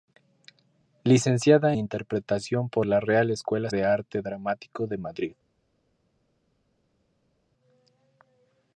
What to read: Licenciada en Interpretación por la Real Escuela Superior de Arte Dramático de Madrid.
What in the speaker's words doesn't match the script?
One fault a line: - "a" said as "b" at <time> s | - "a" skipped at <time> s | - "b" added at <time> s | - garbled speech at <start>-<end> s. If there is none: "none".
- "en" skipped at 1.8 s
- "Superior" skipped at 3.7 s